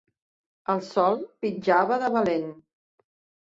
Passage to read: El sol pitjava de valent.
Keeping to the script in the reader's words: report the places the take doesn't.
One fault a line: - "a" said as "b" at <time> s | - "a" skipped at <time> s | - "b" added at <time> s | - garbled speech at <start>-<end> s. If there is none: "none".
none